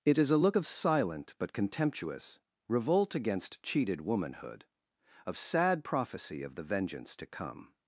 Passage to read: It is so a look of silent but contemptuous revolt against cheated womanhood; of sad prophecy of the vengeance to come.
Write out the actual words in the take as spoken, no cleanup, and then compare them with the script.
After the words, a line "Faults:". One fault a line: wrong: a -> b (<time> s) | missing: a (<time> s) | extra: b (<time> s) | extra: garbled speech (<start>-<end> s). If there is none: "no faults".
It is a look of silent but contemptuous revolt against cheated womanhood; of sad prophecy of the vengeance to come.
Faults:
missing: so (0.3 s)